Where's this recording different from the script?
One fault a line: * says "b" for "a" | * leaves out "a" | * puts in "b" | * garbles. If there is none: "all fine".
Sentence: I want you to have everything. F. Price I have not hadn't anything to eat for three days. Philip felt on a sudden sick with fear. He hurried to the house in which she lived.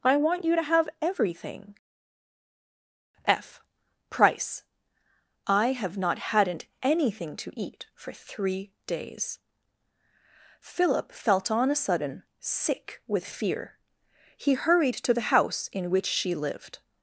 all fine